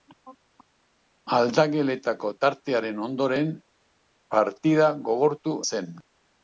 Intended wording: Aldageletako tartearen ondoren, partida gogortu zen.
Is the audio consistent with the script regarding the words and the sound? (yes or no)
yes